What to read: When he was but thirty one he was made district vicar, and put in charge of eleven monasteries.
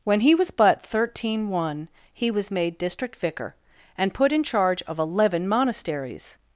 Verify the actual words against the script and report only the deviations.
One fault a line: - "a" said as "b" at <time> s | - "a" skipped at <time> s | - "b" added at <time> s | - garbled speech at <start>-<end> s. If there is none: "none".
- "thirty" said as "thirteen" at 0.8 s